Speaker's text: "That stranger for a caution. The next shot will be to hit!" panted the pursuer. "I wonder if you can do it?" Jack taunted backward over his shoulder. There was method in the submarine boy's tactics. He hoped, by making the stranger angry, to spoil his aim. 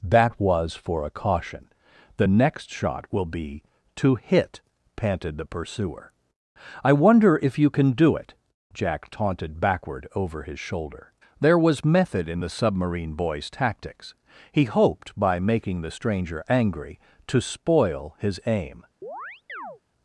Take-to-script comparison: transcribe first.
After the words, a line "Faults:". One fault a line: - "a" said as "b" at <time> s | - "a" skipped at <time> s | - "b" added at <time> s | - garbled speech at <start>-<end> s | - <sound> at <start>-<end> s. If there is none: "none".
"That was for a caution. The next shot will be to hit!" panted the pursuer. "I wonder if you can do it?" Jack taunted backward over his shoulder. There was method in the submarine boy's tactics. He hoped, by making the stranger angry, to spoil his aim.
Faults:
- "stranger" said as "was" at 0.4 s
- chirp at 19.0-19.8 s